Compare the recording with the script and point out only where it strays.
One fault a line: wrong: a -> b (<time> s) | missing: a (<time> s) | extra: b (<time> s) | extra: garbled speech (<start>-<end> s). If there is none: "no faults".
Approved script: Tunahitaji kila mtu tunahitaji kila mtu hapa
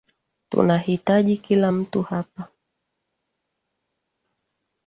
missing: tunahitaji kila mtu (2.0 s)